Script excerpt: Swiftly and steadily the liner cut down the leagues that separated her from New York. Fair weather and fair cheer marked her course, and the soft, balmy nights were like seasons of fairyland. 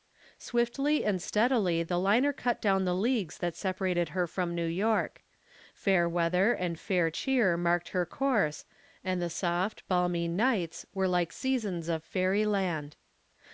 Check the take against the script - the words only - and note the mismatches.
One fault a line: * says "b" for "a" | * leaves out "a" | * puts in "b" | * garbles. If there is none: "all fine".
all fine